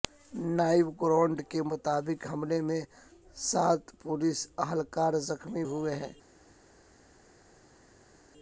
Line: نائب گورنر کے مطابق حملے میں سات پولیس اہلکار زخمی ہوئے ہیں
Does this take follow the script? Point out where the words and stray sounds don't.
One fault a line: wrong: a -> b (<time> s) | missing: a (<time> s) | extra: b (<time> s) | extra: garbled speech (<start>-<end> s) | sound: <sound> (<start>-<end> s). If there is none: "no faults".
no faults